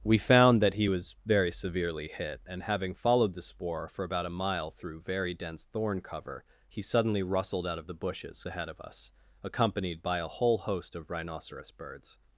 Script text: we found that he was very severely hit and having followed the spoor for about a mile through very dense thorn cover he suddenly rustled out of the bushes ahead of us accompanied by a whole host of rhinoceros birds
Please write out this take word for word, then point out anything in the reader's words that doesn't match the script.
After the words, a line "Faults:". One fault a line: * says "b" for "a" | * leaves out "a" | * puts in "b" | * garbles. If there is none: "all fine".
we found that he was very severely hit and having followed the spoor for about a mile through very dense thorn cover he suddenly rustled out of the bushes ahead of us accompanied by a whole host of rhinoceros birds
Faults:
all fine